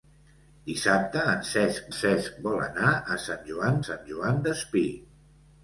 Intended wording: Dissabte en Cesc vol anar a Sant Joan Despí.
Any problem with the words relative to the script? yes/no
yes